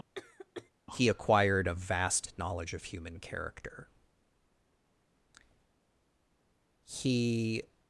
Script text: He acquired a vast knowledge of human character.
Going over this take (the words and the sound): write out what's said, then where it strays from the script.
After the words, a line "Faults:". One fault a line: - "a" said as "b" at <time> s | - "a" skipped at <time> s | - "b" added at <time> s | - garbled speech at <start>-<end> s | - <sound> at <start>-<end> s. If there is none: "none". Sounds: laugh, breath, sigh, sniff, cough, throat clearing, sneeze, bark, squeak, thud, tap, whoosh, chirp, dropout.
He acquired a vast knowledge of human character. He
Faults:
- cough at 0.2-0.7 s
- "He" added at 6.8 s